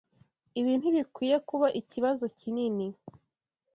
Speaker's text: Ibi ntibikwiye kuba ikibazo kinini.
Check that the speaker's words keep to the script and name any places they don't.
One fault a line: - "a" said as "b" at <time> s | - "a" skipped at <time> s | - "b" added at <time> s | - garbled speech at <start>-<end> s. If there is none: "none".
none